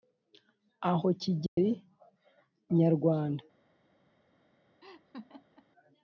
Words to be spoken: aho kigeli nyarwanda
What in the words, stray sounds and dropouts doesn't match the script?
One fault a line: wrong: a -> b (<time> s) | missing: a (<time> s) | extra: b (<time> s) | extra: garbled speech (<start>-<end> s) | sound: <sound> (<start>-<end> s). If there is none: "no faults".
sound: dropout (1.5-1.6 s)
sound: laugh (4.8-5.7 s)